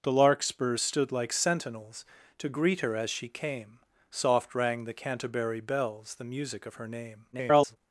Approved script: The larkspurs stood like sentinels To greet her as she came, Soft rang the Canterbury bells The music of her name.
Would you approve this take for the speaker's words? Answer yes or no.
no